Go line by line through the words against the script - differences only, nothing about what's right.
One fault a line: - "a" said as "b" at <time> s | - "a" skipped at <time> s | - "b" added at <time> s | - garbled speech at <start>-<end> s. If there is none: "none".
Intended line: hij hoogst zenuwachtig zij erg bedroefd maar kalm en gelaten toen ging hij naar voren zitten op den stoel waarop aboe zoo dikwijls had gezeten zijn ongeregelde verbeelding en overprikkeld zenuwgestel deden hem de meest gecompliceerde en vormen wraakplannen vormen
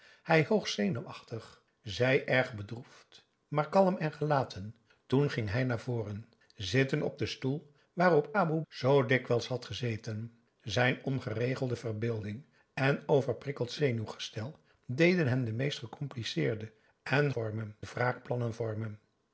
none